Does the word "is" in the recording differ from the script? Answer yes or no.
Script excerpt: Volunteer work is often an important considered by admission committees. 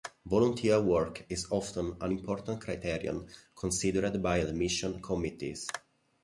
no